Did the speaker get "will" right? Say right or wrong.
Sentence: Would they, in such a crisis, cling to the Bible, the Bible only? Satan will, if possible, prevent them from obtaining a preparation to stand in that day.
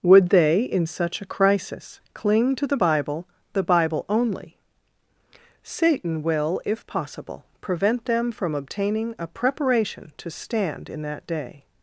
right